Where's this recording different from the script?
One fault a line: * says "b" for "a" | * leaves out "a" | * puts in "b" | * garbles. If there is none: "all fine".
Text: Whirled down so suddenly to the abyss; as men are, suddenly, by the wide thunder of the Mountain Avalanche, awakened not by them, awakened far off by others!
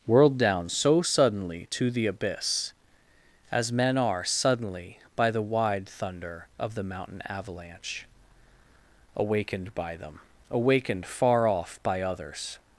* leaves out "not"